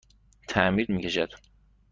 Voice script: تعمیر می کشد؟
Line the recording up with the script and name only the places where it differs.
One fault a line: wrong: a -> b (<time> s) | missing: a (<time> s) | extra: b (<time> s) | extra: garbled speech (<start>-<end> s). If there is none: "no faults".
no faults